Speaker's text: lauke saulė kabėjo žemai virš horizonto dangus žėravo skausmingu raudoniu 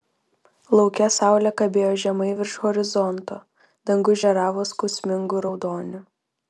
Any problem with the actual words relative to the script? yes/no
no